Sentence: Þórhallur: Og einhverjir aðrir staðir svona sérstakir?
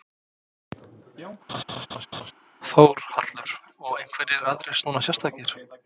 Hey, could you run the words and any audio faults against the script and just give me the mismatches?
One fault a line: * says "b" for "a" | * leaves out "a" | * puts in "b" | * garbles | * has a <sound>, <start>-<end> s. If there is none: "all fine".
* has a laugh, 1.5-2.3 s
* leaves out "staðir"